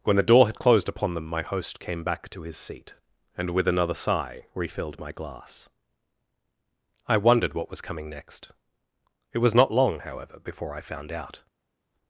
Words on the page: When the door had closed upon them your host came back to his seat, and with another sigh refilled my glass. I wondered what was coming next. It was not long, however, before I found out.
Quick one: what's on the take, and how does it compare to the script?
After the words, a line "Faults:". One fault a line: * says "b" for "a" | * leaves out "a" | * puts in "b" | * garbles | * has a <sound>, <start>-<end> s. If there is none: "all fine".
When the door had closed upon them my host came back to his seat, and with another sigh refilled my glass. I wondered what was coming next. It was not long, however, before I found out.
Faults:
* says "my" for "your"